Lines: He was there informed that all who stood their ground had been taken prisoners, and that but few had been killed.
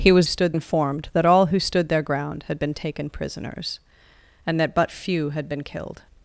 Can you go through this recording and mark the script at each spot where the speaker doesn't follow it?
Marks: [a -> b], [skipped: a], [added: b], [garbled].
He was [there -> stood] informed that all who stood their ground had been taken prisoners, and that but few had been killed.